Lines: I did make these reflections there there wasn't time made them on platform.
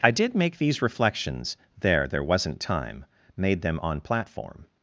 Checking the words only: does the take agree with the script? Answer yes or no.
yes